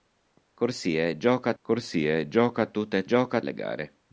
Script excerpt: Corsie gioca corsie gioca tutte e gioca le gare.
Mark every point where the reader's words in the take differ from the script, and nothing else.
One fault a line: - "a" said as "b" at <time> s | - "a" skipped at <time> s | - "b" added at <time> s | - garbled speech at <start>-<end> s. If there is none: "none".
none